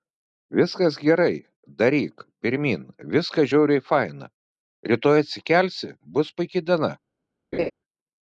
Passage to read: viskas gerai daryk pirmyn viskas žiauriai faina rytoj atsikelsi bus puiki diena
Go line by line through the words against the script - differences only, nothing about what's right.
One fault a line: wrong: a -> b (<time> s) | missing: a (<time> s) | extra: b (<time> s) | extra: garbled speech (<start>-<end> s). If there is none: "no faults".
no faults